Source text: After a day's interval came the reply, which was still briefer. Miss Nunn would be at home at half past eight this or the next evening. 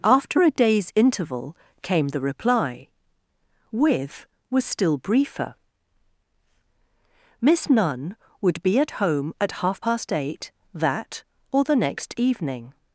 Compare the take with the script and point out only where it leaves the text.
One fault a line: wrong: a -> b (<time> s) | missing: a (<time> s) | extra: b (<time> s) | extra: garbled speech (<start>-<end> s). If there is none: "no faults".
wrong: which -> with (3.7 s)
wrong: this -> that (10.7 s)